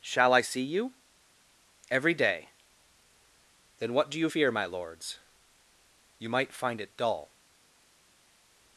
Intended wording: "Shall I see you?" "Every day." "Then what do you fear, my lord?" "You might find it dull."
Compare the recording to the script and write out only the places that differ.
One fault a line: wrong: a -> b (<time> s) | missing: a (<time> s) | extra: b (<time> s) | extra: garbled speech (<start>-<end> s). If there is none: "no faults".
wrong: lord -> lords (4.6 s)